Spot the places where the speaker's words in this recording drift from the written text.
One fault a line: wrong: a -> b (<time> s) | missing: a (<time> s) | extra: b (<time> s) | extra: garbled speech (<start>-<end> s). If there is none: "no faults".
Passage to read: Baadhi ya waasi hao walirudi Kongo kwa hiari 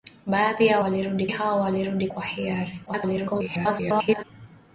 wrong: waasi -> walirudi (0.8 s)
missing: Kongo (2.1 s)
extra: garbled speech (2.9-4.2 s)